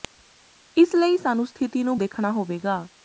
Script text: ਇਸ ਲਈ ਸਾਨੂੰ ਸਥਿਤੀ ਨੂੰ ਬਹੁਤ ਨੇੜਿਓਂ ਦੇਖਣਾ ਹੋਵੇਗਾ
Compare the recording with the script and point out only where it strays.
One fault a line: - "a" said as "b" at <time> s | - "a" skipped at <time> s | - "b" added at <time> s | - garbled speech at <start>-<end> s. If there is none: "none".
- "ਬਹੁਤ ਨੇੜਿਓਂ" skipped at 2.0 s